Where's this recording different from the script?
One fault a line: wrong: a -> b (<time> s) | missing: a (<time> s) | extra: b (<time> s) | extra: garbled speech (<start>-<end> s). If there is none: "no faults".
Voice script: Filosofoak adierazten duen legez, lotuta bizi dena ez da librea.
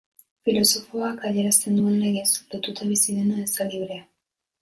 no faults